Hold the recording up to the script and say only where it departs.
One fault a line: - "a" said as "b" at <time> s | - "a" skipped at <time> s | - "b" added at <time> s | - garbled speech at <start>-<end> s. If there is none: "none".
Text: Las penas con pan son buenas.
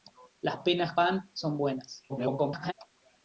- "con" skipped at 1.0 s
- garbled speech at 2.1-2.7 s